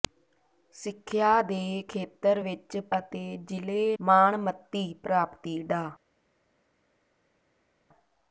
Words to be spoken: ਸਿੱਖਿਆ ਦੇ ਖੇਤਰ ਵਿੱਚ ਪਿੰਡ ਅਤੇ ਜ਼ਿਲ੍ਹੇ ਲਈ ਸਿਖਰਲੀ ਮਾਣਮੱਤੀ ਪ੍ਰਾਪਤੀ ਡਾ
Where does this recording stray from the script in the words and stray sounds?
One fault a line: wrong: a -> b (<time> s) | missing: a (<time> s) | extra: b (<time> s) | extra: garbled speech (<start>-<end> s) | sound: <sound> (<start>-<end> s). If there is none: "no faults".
missing: ਪਿੰਡ (2.8 s)
missing: ਲਈ ਸਿਖਰਲੀ (4.0 s)